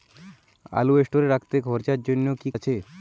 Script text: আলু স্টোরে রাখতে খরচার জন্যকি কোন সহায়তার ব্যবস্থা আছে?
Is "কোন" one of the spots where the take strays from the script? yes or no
yes